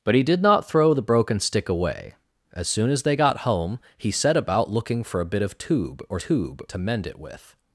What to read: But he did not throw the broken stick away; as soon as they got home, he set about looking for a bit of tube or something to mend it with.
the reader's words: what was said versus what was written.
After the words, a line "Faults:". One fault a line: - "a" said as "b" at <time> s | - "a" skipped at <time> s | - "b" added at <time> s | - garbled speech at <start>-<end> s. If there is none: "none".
But he did not throw the broken stick away; as soon as they got home, he set about looking for a bit of tube or tube to mend it with.
Faults:
- "something" said as "tube" at 6.2 s